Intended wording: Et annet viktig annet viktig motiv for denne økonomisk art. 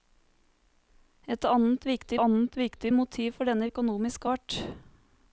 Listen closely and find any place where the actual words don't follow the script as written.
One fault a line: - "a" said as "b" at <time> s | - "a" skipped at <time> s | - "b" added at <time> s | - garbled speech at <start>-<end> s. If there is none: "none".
none